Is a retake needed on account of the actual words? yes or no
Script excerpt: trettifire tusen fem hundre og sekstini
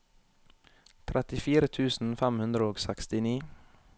no